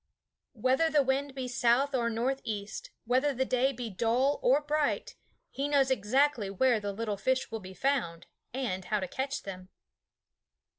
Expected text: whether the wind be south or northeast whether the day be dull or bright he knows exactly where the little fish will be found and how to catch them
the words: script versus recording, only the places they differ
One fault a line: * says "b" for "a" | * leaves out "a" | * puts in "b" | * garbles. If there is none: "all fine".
all fine